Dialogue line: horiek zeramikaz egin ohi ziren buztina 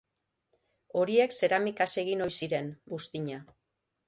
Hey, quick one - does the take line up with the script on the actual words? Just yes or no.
yes